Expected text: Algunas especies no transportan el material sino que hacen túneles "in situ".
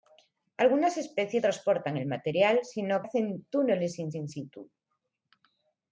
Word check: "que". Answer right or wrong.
wrong